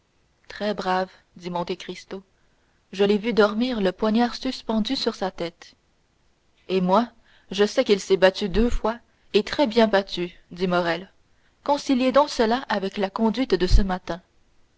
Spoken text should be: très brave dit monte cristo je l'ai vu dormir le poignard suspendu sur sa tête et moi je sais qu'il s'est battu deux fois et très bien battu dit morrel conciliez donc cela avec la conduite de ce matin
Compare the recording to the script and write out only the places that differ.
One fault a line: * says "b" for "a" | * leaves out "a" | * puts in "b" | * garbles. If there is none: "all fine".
all fine